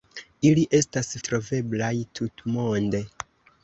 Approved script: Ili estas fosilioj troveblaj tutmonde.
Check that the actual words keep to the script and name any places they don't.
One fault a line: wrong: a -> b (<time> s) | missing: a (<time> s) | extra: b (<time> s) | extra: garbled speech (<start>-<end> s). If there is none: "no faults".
missing: fosilioj (1.1 s)